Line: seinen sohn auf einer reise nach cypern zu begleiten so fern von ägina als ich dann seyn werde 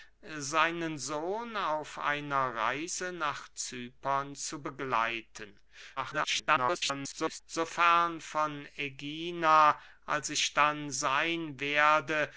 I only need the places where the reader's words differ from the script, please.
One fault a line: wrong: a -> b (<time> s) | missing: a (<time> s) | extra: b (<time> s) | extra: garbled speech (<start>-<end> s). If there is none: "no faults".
extra: garbled speech (6.0-7.4 s)